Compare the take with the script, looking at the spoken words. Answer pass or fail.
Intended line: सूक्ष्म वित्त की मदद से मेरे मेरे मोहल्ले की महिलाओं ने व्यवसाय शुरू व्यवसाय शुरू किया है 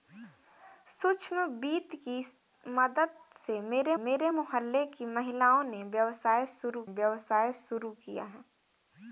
pass